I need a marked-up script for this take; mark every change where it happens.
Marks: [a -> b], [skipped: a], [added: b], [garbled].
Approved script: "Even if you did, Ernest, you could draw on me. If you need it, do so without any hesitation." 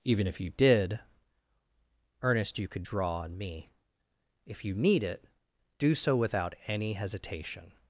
"Even if you did, Ernest, you could draw on me. If you need it, do so without any hesitation."